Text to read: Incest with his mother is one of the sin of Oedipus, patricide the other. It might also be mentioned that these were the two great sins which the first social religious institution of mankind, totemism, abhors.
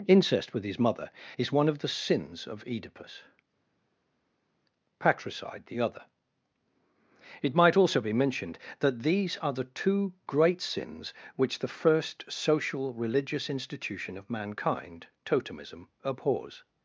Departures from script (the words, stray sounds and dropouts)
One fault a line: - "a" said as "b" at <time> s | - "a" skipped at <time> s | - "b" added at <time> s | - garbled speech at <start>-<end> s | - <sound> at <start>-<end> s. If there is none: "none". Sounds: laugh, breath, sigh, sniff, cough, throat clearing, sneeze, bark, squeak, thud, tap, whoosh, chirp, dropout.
- "sin" said as "sins" at 1.9 s
- "were" said as "are" at 9.4 s